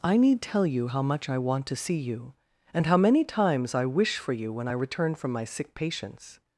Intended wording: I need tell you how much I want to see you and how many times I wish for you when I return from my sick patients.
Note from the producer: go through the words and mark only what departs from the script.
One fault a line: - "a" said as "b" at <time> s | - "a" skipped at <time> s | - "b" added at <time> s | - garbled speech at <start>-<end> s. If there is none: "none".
none